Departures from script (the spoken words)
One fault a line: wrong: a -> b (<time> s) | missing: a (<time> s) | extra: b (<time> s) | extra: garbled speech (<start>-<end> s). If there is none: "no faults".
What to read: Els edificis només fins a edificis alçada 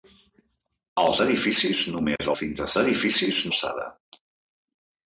no faults